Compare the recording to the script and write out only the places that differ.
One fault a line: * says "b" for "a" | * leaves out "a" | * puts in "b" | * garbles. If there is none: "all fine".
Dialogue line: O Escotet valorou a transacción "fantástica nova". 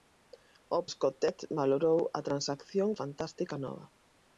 all fine